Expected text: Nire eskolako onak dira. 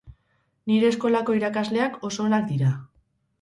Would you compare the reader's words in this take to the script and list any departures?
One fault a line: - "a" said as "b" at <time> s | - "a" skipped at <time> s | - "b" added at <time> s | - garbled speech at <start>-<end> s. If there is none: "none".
- "irakasleak oso" added at 1.4 s